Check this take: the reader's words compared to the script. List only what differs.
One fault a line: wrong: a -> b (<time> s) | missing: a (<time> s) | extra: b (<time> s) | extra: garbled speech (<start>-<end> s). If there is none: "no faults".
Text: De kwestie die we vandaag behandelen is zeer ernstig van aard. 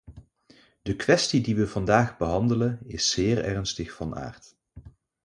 no faults